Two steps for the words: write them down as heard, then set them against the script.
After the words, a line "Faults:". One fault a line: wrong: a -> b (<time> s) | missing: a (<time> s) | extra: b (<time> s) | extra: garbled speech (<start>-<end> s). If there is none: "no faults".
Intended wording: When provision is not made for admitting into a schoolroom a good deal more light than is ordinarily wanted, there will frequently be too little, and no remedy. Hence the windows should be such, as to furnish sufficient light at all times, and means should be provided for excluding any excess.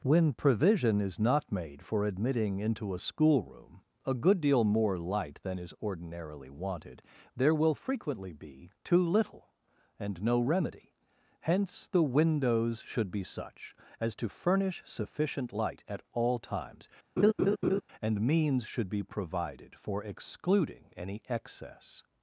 When provision is not made for admitting into a schoolroom a good deal more light than is ordinarily wanted, there will frequently be too little, and no remedy. Hence the windows should be such, as to furnish sufficient light at all times, and means should be provided for excluding any excess.
Faults:
no faults